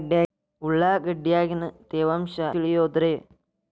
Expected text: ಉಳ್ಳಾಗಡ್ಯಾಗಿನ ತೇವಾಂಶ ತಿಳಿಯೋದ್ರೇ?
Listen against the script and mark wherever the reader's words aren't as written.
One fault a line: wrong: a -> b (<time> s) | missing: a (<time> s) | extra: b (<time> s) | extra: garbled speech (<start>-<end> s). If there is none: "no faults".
no faults